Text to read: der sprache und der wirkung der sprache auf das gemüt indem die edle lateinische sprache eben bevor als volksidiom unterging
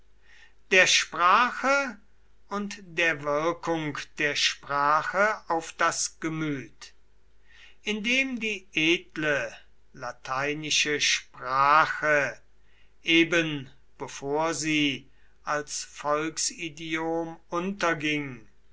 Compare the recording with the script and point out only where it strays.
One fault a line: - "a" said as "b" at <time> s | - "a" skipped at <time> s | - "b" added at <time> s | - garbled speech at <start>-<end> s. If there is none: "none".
- "sie" added at 14.5 s